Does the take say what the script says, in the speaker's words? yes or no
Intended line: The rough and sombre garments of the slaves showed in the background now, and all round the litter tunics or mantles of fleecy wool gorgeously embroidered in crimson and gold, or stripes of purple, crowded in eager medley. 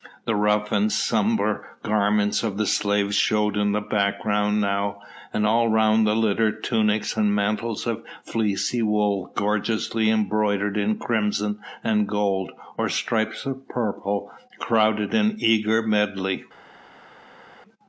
no